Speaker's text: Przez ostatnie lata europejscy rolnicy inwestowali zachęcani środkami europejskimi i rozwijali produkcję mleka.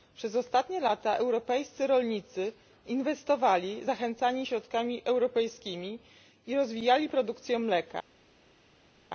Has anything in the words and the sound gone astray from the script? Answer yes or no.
no